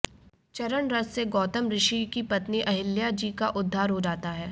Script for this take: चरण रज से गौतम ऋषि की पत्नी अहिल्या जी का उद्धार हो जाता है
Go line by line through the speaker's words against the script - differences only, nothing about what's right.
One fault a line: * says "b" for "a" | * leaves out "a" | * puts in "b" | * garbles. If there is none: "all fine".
all fine